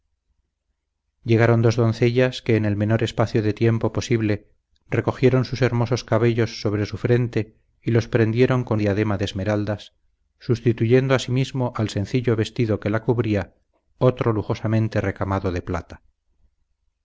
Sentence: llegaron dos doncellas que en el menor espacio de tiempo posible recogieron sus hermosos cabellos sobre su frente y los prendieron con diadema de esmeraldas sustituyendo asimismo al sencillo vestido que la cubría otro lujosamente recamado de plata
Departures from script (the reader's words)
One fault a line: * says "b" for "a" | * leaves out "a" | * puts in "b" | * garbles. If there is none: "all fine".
all fine